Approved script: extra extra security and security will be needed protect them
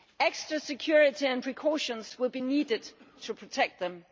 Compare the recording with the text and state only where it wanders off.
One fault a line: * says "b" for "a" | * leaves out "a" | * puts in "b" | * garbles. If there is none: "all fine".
* leaves out "extra"
* says "precautions" for "security"
* puts in "to"